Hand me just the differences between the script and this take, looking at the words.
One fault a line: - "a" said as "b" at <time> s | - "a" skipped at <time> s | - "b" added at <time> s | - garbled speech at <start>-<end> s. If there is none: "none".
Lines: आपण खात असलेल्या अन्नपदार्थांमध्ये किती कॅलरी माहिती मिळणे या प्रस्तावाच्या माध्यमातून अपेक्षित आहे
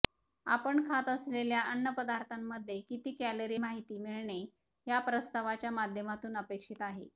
none